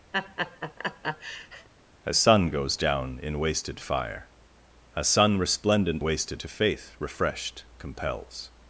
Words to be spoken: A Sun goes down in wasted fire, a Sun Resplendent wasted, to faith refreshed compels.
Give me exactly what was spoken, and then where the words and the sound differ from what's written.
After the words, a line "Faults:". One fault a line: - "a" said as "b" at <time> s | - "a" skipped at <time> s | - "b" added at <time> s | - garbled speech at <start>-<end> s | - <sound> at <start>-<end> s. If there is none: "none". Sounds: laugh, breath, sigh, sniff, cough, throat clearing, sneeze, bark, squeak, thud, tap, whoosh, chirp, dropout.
A Sun goes down in wasted fire, a Sun Resplendent wasted, to faith refreshed compels.
Faults:
- laugh at 0.1-1.7 s